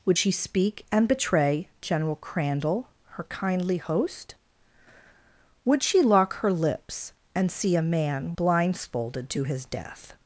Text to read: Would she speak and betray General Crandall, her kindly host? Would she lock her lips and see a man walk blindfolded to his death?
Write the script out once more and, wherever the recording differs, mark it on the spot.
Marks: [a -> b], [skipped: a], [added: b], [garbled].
Would she speak and betray General Crandall, her kindly host? Would she lock her lips and see a man [skipped: walk] blindfolded to his death?